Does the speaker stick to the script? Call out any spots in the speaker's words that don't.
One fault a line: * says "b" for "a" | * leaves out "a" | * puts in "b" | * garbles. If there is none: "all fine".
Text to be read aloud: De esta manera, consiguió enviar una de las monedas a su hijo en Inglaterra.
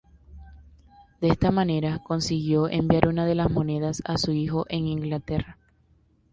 all fine